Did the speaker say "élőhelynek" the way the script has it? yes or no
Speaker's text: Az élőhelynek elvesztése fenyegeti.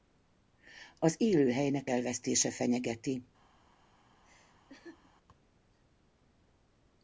yes